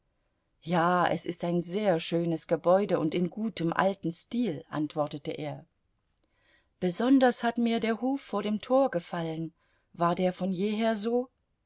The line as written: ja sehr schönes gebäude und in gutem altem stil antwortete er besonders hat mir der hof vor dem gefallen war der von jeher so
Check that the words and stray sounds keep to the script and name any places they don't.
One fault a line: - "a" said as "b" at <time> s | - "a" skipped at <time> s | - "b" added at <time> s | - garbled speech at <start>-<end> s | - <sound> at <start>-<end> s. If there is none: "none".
- "es ist ein" added at 1.1 s
- "tor" added at 8.6 s